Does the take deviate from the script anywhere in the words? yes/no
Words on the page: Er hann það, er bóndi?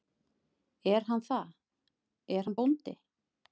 yes